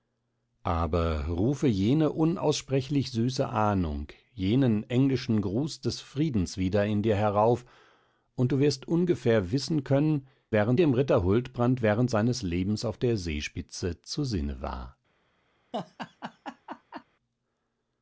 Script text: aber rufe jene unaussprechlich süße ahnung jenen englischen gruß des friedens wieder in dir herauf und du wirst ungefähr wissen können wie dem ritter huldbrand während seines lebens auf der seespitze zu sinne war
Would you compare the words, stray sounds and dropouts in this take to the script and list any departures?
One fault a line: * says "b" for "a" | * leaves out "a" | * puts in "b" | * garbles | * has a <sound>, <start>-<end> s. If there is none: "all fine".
* says "während" for "wie"
* has a laugh, 15.7-17.0 s